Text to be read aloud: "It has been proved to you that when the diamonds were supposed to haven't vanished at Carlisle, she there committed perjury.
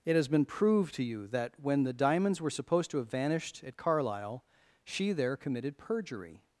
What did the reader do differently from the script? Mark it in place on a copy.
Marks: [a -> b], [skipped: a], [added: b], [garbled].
"It has been proved to you that when the diamonds were supposed to [haven't -> have] vanished at Carlisle, she there committed perjury.